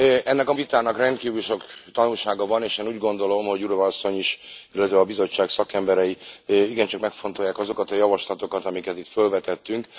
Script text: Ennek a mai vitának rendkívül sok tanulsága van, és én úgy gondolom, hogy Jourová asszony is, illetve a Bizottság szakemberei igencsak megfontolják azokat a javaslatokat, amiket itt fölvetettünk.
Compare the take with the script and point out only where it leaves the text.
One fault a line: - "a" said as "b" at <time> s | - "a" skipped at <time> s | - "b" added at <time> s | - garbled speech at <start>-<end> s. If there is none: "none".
- "mai" skipped at 0.5 s